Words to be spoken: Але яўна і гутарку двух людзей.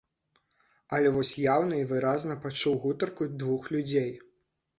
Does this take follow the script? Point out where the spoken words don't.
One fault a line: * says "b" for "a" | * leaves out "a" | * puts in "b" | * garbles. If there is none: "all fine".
* puts in "вось"
* puts in "выразна пачуў"